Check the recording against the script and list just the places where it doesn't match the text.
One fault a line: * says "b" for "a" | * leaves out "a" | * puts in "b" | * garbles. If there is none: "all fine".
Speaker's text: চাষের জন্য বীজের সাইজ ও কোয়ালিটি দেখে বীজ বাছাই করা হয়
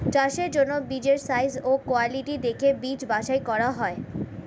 all fine